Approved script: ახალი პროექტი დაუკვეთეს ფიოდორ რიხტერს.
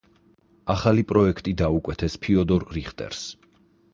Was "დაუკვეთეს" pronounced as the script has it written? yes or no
yes